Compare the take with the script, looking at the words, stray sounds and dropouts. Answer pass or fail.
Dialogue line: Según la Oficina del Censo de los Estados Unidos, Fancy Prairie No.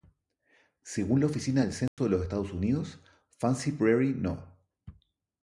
fail